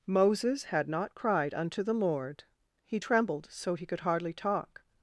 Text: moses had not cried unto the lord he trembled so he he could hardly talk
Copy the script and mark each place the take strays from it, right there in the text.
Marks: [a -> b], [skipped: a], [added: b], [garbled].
moses had not cried unto the lord he trembled so he [skipped: he] could hardly talk